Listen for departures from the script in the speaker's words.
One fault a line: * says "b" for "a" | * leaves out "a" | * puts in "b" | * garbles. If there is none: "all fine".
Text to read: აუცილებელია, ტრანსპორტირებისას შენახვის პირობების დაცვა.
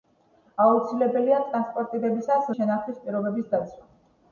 all fine